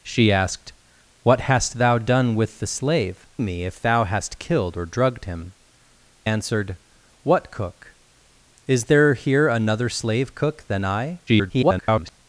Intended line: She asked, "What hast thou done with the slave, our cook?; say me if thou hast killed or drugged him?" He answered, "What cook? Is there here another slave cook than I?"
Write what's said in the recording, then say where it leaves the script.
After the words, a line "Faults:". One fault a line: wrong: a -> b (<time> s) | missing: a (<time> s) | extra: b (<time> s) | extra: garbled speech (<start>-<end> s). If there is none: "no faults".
She asked, "What hast thou done with the slave, me if thou hast killed or drugged him?" Answered, "What cook? Is there here another slave cook than I?" [garbled]
Faults:
missing: our cook say (3.3 s)
missing: He (5.5 s)
extra: garbled speech (11.3-12.2 s)